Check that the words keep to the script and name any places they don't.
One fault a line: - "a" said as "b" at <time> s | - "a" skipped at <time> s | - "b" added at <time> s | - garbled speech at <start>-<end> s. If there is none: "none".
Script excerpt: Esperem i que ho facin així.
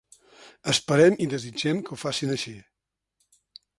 - "desitgem" added at 1.3 s